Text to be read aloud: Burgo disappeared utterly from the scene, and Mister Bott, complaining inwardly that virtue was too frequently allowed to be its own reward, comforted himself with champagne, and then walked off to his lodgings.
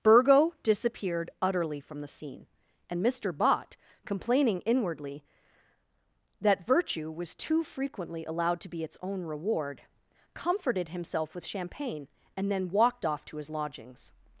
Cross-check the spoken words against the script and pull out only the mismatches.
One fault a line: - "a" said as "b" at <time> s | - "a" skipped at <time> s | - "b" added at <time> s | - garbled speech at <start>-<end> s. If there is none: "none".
none